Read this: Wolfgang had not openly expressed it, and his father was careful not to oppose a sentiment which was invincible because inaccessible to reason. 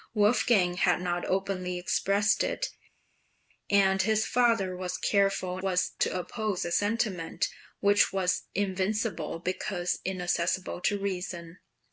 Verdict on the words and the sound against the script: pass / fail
fail